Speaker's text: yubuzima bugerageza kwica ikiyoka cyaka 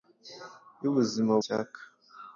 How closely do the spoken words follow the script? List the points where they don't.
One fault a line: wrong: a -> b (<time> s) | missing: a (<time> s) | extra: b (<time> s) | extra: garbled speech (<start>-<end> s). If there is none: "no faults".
missing: bugerageza kwica ikiyoka (1.3 s)